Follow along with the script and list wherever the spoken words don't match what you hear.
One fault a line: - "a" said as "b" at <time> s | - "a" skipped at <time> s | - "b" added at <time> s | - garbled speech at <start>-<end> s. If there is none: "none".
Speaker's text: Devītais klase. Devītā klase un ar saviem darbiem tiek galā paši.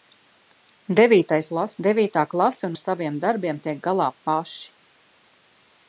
none